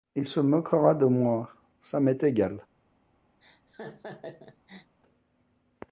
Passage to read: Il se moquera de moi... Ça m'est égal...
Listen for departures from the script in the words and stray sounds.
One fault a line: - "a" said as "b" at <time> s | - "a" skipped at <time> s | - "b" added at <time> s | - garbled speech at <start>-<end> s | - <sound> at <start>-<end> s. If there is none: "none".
- laugh at 3.4-5.0 s